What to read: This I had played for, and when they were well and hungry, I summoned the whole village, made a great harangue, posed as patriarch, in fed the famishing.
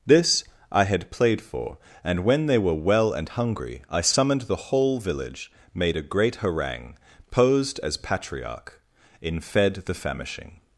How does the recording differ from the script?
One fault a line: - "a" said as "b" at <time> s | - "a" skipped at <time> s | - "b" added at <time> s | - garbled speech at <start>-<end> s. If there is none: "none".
none